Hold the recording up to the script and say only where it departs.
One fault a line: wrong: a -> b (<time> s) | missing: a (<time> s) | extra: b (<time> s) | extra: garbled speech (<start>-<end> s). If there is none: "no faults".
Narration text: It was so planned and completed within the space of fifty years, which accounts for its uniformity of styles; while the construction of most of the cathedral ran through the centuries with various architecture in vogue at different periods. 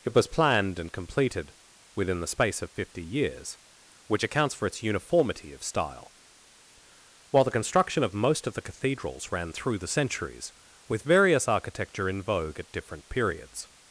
missing: so (0.3 s)
wrong: styles -> style (5.6 s)
wrong: cathedral -> cathedrals (8.6 s)